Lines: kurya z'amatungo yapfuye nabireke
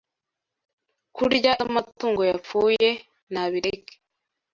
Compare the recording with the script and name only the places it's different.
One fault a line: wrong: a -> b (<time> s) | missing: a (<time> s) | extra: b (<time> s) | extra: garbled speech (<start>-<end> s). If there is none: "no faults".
no faults